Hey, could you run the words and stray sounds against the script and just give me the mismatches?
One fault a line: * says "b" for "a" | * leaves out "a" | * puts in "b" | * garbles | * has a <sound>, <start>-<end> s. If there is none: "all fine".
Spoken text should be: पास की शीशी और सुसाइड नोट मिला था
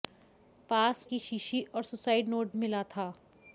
all fine